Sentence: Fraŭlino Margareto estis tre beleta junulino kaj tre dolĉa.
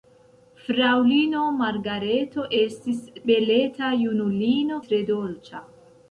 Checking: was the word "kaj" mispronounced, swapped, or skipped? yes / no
yes